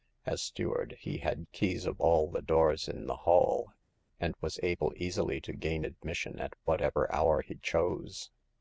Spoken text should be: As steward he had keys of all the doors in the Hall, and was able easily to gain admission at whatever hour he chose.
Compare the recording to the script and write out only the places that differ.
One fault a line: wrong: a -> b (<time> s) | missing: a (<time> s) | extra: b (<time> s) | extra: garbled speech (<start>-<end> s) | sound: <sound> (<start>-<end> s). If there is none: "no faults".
no faults